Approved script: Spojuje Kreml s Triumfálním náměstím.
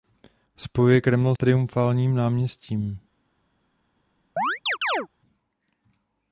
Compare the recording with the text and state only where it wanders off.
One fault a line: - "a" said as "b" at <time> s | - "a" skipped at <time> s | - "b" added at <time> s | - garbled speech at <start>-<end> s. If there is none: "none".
- "s" skipped at 1.4 s